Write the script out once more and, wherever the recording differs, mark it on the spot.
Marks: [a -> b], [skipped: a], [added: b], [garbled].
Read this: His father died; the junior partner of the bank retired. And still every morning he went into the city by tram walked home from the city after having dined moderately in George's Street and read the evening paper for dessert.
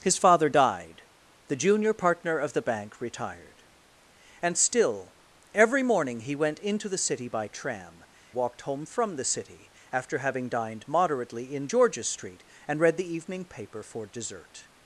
His father died; the junior partner of the bank retired. And still every morning he went into the city by tram walked home from the city after having dined moderately in George's Street and read the evening paper for dessert.